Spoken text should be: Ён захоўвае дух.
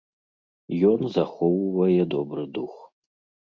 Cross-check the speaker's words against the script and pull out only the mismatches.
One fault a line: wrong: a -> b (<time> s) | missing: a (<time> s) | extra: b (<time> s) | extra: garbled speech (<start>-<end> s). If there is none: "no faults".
extra: добры (2.2 s)